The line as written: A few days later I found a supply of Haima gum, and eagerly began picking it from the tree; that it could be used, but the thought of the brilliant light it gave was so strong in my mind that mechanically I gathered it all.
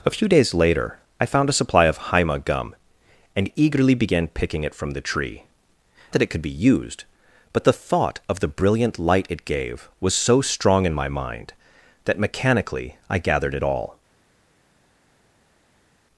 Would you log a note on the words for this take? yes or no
no